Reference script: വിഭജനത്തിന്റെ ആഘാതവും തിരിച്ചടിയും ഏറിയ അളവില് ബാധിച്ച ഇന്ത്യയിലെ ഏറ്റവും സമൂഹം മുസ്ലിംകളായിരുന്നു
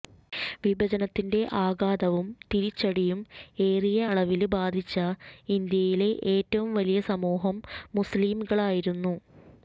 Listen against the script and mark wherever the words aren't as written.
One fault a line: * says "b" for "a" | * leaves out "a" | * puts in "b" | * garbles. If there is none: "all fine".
* puts in "വലിയ"